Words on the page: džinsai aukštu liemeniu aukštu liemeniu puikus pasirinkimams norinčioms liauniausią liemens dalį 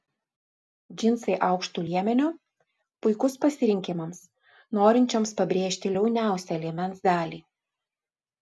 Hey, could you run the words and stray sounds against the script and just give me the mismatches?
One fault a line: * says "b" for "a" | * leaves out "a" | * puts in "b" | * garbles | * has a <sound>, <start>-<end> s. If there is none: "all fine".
* leaves out "aukštu liemeniu"
* puts in "pabrėžti"